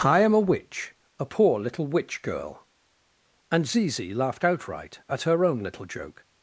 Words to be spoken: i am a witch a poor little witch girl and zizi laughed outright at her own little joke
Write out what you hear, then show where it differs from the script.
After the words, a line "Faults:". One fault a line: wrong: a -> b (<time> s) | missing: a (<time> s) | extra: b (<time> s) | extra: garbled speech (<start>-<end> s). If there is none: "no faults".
i am a witch a poor little witch girl and zizi laughed outright at her own little joke
Faults:
no faults